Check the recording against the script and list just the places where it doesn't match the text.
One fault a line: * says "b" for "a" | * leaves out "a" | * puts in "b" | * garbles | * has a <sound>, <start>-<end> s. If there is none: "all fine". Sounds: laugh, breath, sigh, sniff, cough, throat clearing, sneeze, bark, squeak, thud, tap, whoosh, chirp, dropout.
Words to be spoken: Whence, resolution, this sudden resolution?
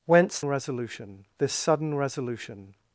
all fine